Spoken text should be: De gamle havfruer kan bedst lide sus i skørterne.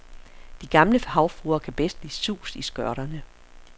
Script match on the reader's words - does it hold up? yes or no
yes